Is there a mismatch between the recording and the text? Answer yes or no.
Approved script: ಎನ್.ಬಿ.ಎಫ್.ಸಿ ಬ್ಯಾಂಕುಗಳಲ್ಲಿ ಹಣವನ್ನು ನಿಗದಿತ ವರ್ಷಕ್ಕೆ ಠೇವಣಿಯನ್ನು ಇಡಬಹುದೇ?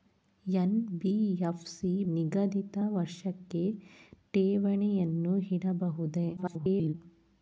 yes